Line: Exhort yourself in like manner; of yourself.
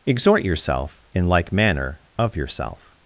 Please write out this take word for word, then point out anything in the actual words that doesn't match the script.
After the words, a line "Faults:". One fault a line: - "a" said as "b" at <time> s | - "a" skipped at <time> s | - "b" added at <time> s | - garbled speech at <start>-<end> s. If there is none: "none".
Exhort yourself in like manner; of yourself.
Faults:
none